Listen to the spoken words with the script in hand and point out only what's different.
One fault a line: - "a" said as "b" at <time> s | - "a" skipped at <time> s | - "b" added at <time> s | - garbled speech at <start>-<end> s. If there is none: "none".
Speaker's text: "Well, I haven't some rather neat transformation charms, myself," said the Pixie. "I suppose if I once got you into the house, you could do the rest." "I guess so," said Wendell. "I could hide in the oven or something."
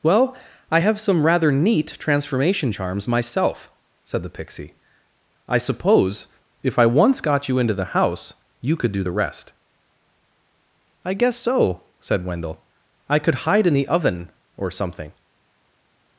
- "haven't" said as "have" at 0.8 s